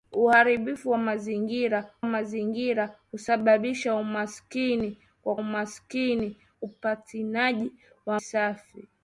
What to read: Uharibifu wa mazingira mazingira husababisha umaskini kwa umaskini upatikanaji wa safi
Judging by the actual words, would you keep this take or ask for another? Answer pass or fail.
pass